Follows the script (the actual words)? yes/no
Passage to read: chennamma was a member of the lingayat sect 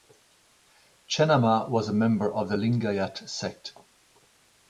yes